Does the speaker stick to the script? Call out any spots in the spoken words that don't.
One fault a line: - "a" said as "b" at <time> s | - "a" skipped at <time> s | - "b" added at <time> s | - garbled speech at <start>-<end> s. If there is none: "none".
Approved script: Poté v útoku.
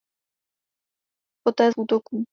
none